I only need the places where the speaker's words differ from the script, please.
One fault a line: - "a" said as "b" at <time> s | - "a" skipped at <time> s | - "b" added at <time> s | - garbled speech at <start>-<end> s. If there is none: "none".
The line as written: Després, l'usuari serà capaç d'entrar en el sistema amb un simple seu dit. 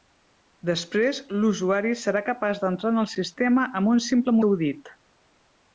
none